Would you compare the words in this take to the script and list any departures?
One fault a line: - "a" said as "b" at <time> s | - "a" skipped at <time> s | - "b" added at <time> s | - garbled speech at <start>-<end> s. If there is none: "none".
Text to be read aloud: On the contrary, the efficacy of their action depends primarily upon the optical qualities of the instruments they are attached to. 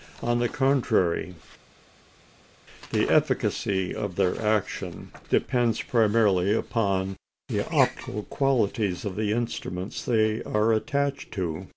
none